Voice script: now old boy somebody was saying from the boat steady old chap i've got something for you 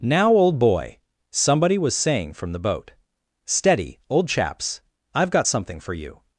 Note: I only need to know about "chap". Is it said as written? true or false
false